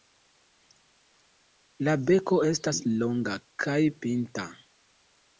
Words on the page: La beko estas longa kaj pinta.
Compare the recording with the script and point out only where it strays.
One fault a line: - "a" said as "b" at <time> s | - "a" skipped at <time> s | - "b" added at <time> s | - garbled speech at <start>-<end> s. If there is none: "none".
none